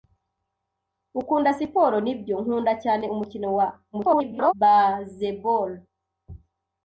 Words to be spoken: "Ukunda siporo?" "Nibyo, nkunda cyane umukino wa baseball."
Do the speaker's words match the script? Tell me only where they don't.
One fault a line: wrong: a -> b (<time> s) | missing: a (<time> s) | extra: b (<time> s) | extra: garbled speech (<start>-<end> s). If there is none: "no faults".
extra: garbled speech (3.9-4.5 s)